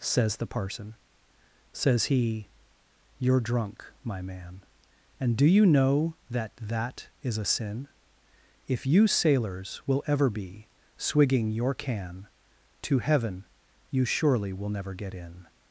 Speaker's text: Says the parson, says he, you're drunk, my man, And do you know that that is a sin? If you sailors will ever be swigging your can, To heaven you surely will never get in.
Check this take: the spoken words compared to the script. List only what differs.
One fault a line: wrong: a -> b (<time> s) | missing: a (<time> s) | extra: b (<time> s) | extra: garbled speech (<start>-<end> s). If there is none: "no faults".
no faults